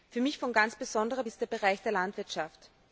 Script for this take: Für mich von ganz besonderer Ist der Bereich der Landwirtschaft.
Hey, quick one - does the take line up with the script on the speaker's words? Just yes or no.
yes